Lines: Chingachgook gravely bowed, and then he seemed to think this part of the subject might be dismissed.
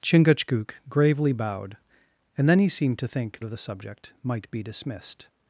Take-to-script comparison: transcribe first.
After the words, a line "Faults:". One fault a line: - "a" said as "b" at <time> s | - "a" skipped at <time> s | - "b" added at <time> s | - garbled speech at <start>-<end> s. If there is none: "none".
Chingachgook gravely bowed, and then he seemed to think of the subject might be dismissed.
Faults:
- "this part" skipped at 3.4 s